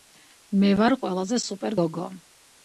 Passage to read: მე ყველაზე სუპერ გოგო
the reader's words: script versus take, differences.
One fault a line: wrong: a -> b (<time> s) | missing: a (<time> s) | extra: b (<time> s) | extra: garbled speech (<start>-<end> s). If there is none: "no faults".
extra: ვარ (0.8 s)